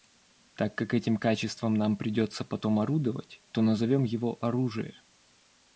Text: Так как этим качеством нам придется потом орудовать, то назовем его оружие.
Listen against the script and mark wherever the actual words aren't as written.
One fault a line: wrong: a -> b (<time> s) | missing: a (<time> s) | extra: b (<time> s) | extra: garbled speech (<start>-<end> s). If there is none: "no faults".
no faults